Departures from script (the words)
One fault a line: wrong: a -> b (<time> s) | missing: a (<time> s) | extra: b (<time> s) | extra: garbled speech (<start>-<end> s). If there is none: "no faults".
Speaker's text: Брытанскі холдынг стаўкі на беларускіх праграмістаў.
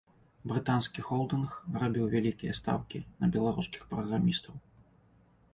extra: рабіў вялікія (1.8 s)